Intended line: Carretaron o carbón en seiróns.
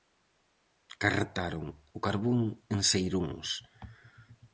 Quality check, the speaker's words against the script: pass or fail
pass